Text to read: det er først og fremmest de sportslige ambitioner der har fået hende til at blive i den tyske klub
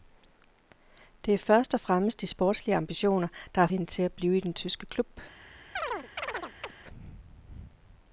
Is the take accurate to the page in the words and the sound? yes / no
no